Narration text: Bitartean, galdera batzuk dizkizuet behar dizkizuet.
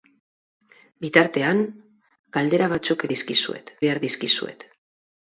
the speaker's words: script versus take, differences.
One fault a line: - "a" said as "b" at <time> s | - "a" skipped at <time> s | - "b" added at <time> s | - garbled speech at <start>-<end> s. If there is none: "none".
none